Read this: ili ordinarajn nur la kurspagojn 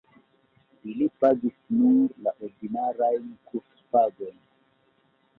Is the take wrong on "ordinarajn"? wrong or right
wrong